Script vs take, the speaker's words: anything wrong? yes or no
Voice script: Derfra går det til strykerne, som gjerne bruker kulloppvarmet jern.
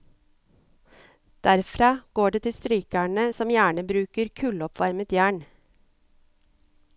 no